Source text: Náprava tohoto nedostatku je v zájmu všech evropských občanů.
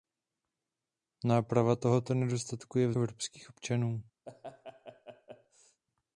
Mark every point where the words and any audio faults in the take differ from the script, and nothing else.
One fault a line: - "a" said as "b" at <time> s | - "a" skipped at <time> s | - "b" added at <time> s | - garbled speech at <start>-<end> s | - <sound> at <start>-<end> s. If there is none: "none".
- "zájmu všech" skipped at 2.9 s
- laugh at 4.3-5.8 s